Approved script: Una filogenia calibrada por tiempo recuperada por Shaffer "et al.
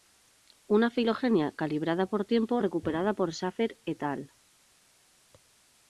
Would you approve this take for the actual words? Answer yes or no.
yes